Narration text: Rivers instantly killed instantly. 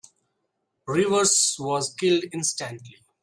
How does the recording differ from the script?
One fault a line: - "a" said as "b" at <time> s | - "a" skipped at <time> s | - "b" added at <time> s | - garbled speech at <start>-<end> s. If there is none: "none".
- "instantly" said as "was" at 1.6 s